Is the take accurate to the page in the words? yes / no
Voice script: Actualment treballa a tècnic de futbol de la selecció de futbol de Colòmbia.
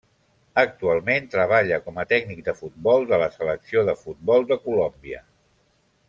no